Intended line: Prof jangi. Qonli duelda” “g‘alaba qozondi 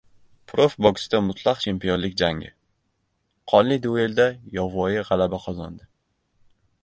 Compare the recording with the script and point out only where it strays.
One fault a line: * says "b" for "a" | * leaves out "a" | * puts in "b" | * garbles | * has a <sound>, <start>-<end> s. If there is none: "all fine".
* puts in "boksda mutlaq chempionlik"
* puts in "yovvoyi"